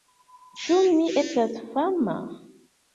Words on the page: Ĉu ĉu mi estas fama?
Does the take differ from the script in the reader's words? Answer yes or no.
yes